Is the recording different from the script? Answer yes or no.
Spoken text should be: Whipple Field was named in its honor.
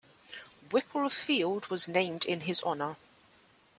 yes